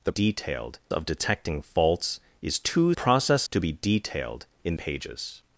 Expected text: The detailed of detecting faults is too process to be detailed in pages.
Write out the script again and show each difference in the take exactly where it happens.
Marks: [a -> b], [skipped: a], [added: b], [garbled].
The detailed of detecting faults is too process to be detailed in pages.